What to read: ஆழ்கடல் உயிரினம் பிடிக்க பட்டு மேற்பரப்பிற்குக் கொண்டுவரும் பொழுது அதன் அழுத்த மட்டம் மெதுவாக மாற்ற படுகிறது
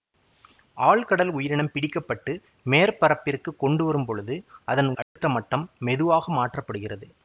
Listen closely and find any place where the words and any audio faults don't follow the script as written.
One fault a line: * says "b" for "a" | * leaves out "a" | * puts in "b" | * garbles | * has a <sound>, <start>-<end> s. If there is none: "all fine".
* has a dropout, 5.0-5.2 s